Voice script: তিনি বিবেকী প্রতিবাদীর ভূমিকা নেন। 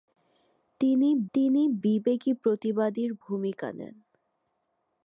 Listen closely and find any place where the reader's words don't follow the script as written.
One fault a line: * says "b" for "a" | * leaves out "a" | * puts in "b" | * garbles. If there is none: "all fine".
* puts in "তিনি"